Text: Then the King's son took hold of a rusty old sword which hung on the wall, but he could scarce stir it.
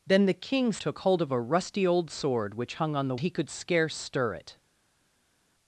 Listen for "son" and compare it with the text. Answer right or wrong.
wrong